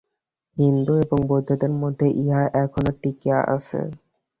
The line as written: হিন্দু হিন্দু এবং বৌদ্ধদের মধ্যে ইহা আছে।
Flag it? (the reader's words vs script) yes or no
yes